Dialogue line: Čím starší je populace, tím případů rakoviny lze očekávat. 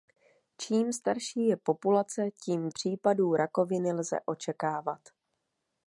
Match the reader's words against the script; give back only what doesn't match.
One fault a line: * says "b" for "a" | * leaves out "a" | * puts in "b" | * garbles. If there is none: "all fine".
all fine